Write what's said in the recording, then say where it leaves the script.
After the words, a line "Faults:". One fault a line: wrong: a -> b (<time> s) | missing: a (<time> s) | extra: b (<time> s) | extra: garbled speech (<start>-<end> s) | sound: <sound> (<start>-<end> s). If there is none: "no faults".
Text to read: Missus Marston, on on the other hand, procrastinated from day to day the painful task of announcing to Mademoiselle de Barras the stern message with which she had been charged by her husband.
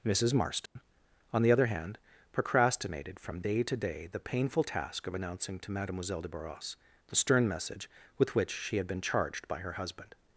Missus Marston, on the other hand, procrastinated from day to day the painful task of announcing to Mademoiselle de Barras the stern message with which she had been charged by her husband.
Faults:
sound: dropout (0.7-0.8 s)
missing: on (1.4 s)